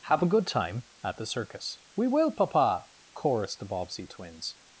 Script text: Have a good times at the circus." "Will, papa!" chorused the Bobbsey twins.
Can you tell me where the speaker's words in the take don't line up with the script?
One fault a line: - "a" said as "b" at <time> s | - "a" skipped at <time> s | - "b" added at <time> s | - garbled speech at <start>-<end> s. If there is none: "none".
- "times" said as "time" at 0.5 s
- "We" added at 1.9 s